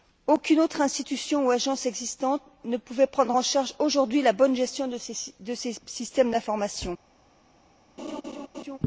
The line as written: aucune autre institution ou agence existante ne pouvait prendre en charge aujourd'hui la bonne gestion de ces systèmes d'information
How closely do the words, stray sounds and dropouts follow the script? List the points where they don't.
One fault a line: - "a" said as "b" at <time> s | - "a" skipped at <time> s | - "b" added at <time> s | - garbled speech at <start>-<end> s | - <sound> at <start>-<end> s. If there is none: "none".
- laugh at 8.0-8.8 s